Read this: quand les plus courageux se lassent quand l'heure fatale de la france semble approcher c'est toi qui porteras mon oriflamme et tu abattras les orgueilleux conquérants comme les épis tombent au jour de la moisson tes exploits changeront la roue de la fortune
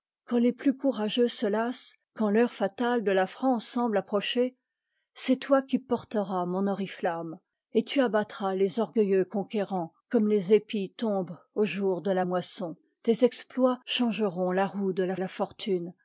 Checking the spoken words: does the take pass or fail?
fail